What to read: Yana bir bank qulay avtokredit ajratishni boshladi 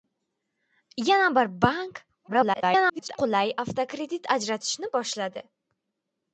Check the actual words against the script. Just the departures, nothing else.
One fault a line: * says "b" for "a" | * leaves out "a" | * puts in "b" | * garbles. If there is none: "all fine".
* garbles